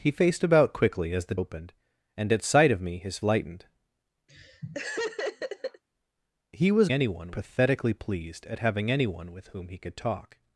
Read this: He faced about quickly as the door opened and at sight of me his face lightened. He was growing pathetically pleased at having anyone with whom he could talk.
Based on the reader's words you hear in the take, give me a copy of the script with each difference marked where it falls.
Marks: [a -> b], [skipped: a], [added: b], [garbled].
He faced about quickly as the [skipped: door] opened and at sight of me his [skipped: face] lightened. He was [growing -> anyone] pathetically pleased at having anyone with whom he could talk.